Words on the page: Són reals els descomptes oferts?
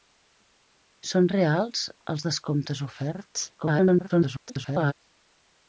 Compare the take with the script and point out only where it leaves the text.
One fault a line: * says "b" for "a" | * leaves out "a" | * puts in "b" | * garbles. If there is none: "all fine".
* garbles